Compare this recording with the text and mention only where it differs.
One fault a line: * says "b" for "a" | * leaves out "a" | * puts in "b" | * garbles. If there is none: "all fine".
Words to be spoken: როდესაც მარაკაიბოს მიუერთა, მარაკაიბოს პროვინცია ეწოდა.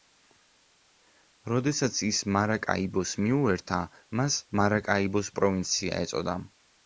* puts in "ის"
* puts in "მას"